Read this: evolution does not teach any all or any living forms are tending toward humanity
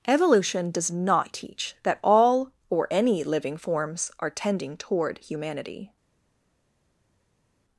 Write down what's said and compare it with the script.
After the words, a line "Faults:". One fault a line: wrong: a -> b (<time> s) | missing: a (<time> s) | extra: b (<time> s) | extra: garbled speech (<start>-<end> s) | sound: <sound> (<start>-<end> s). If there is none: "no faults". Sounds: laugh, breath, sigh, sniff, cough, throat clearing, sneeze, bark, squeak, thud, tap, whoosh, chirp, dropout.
evolution does not teach that all or any living forms are tending toward humanity
Faults:
wrong: any -> that (1.8 s)